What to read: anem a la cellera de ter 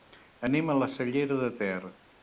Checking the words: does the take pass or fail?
pass